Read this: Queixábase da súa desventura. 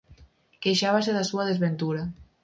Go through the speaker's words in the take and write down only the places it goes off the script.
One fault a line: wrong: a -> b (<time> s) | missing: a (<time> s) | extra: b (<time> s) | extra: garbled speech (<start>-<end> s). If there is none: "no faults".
no faults